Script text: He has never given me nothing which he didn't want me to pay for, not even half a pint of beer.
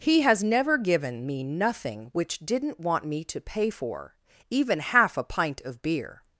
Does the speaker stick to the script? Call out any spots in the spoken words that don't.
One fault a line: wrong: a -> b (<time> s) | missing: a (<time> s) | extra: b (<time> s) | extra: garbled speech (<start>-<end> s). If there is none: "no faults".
missing: he (2.4 s)
missing: not (4.1 s)